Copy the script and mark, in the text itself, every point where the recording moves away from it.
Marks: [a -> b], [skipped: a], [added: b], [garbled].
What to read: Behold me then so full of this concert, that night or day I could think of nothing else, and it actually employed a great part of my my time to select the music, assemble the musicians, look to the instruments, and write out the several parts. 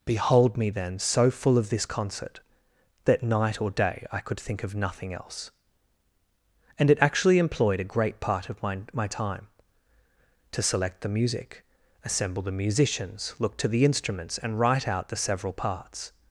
Behold me then so full of this concert, that night or day I could think of nothing else, and it actually employed a great part of my my time to select the music, assemble the musicians, look to the instruments, and write out the several parts.